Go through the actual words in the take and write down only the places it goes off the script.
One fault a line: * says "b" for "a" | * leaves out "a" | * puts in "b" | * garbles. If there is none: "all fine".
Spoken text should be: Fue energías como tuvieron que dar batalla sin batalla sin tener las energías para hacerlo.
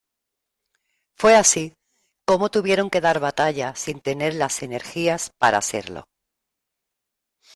* says "así" for "energías"
* leaves out "batalla sin"